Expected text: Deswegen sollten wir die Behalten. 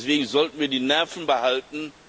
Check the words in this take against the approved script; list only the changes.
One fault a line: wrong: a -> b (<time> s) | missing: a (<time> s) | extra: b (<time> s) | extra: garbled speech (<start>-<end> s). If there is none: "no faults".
extra: Nerven (0.8 s)